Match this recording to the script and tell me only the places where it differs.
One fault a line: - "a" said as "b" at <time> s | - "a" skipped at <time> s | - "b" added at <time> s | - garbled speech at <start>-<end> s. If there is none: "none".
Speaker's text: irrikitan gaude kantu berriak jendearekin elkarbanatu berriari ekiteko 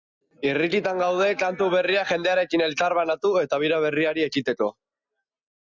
- "eta bira" added at 3.4 s